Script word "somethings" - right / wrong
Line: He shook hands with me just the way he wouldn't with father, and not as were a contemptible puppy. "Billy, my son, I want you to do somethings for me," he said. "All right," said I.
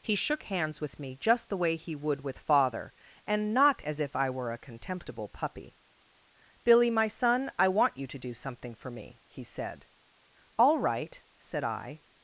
wrong